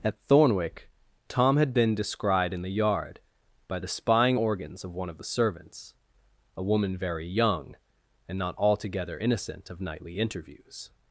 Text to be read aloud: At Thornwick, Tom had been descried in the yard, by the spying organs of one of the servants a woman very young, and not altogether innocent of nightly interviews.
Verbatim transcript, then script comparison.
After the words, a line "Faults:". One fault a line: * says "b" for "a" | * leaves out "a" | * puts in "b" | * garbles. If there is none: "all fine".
At Thornwick, Tom had been descried in the yard, by the spying organs of one of the servants a woman very young, and not altogether innocent of nightly interviews.
Faults:
all fine